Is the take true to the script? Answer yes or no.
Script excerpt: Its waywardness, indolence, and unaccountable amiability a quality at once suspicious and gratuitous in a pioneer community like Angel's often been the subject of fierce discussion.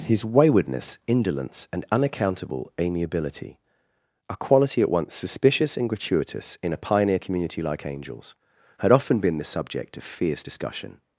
no